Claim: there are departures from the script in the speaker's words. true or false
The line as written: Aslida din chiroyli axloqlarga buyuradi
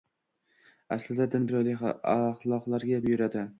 false